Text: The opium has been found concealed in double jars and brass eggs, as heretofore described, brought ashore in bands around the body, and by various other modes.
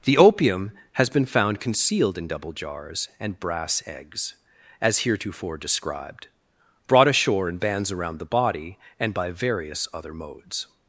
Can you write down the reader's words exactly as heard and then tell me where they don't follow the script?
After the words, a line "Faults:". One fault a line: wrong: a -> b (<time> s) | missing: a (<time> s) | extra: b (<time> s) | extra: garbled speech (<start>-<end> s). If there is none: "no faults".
The opium has been found concealed in double jars and brass eggs, as heretofore described, brought ashore in bands around the body, and by various other modes.
Faults:
no faults